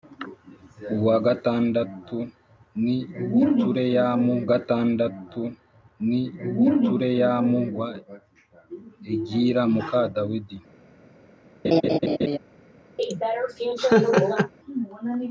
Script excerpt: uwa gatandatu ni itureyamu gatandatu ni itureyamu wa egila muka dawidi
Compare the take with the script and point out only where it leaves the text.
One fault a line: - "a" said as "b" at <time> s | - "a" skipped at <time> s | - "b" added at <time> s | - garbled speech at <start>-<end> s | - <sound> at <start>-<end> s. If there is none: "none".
- laugh at 11.6-12.4 s
- laugh at 13.0-14.5 s